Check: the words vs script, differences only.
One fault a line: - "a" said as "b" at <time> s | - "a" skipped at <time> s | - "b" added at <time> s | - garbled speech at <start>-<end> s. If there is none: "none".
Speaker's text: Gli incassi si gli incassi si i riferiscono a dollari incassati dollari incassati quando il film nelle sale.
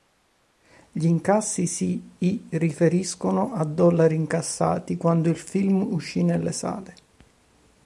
- "gli incassi si" skipped at 2.0 s
- "dollari incassati" skipped at 5.0 s
- "uscì" added at 5.9 s